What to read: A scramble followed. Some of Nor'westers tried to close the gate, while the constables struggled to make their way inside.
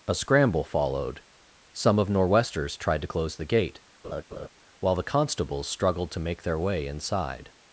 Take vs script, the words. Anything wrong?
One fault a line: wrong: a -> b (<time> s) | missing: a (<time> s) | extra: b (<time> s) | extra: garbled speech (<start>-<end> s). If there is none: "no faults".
no faults